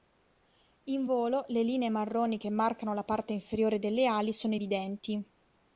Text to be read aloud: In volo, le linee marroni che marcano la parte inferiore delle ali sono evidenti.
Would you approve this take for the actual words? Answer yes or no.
yes